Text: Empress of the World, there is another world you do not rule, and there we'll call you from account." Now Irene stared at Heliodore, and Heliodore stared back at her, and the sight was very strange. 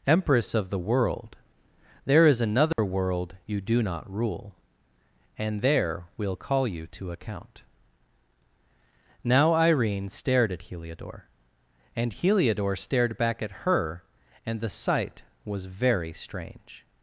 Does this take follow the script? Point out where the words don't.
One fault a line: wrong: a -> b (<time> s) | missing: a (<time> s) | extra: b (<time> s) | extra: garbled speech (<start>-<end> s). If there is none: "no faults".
wrong: from -> to (6.9 s)